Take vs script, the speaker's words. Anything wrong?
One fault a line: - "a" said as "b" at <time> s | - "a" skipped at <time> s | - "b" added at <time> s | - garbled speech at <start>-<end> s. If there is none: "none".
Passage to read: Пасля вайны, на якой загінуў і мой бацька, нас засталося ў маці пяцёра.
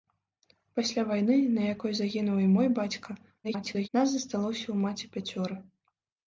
- garbled speech at 3.4-3.9 s